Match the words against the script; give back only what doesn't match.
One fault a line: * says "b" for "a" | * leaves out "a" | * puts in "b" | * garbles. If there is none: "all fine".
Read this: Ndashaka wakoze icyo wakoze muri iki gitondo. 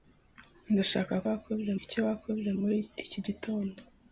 all fine